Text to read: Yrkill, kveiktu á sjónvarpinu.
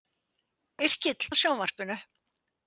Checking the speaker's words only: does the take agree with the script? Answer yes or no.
no